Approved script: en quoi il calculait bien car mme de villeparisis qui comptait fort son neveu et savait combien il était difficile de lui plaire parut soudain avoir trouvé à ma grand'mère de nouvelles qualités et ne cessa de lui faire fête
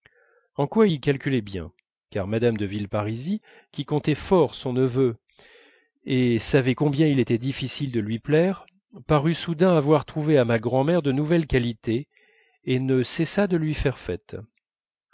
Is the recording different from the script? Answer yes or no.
no